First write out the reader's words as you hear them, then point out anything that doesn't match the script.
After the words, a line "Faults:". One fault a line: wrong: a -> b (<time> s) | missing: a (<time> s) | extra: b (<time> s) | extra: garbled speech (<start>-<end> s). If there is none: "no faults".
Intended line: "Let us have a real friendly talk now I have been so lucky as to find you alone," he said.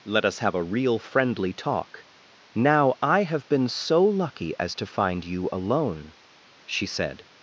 "Let us have a real friendly talk now I have been so lucky as to find you alone," she said.
Faults:
wrong: he -> she (6.6 s)